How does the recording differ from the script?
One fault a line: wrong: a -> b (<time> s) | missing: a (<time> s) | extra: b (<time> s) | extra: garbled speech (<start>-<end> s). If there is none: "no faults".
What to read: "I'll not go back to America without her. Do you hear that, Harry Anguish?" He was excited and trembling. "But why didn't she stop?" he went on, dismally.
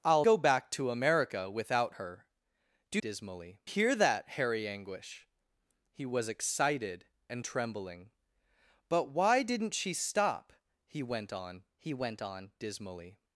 missing: not (0.2 s)
wrong: you -> dismally (3.0 s)
extra: he went on (11.8 s)